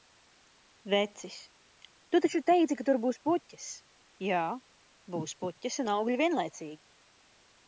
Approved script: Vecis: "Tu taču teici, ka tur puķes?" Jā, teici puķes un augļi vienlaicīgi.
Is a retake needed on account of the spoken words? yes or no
yes